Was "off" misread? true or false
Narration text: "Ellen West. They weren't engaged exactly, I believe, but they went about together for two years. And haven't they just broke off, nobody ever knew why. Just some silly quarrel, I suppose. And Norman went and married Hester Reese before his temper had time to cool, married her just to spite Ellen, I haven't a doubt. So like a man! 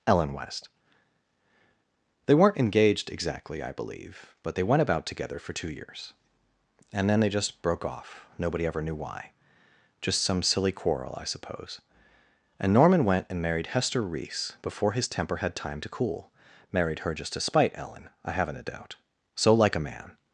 false